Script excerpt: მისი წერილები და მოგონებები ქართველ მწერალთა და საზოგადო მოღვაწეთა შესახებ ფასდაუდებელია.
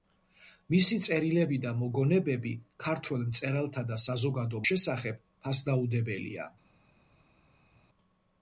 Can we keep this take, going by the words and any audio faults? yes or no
no